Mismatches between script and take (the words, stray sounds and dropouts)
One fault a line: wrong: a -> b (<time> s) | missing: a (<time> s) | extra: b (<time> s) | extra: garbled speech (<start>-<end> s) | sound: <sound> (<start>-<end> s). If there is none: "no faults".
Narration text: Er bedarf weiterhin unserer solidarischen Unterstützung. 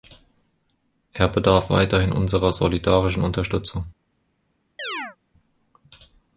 sound: chirp (4.8-5.2 s)